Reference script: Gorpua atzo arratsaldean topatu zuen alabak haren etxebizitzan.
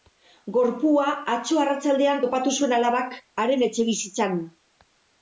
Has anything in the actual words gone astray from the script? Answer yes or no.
no